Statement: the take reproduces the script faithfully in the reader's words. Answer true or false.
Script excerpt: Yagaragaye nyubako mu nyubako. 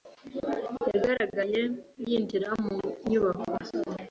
false